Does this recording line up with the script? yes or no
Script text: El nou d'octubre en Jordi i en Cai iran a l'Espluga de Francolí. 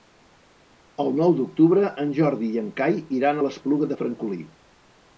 yes